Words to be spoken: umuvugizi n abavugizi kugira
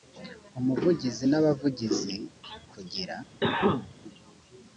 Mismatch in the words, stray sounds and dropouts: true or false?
true